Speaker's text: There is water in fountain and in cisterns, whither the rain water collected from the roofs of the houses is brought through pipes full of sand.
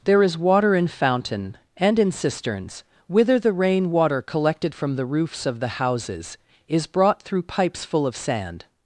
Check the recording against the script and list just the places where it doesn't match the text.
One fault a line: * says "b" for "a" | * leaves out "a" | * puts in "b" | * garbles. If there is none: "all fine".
all fine